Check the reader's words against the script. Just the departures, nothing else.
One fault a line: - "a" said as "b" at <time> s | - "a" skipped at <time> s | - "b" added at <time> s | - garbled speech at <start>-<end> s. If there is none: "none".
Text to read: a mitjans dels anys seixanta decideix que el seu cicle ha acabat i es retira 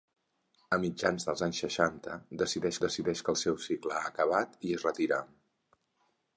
- "decideix" added at 2.9 s